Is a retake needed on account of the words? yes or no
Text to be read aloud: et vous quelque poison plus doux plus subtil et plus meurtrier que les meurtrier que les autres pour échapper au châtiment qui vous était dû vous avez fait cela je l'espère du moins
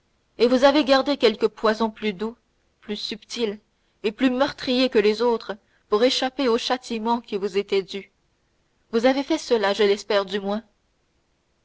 yes